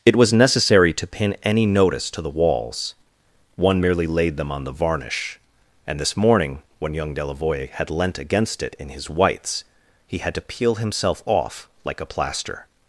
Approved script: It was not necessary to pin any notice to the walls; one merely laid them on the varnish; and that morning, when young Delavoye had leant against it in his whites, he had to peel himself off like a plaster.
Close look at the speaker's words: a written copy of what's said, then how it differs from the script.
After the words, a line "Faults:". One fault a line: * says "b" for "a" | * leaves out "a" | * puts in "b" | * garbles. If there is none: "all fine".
It was necessary to pin any notice to the walls; one merely laid them on the varnish; and this morning, when young Delavoye had leant against it in his whites, he had to peel himself off like a plaster.
Faults:
* leaves out "not"
* says "this" for "that"